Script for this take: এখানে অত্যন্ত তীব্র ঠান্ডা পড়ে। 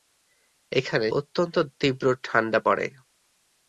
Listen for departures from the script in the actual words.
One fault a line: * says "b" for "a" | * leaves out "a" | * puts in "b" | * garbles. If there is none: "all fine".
all fine